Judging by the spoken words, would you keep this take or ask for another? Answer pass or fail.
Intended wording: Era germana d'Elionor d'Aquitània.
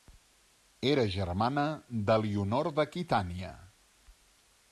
pass